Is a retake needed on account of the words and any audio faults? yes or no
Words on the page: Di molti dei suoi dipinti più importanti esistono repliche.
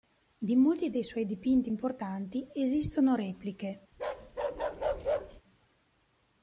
yes